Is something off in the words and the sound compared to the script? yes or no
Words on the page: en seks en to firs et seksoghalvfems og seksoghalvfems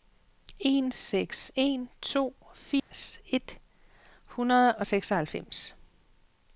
yes